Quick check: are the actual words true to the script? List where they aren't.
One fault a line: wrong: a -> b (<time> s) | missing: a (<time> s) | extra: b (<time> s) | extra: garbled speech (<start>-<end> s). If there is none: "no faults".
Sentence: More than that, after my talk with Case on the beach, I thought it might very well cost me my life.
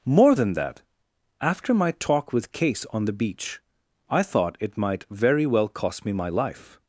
no faults